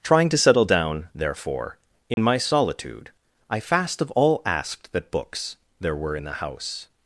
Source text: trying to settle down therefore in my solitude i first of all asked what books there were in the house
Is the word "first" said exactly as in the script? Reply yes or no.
no